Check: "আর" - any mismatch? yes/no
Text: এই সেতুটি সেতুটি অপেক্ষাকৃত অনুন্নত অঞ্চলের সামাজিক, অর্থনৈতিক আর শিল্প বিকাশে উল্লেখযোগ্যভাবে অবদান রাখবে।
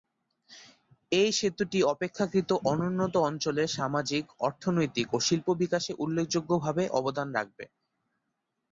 yes